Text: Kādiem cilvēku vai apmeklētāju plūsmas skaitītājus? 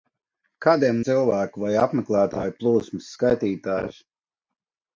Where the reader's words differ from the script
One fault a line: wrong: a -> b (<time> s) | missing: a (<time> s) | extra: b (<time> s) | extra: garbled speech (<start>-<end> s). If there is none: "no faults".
no faults